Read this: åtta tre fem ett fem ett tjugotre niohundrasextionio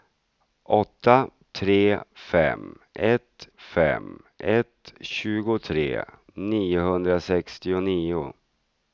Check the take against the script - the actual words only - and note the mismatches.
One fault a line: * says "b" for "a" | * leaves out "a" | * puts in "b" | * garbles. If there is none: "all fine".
all fine